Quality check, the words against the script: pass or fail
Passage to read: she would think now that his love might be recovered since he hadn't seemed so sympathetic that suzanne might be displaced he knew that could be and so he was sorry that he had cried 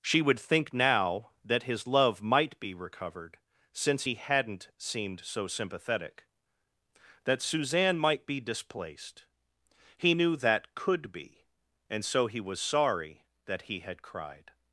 pass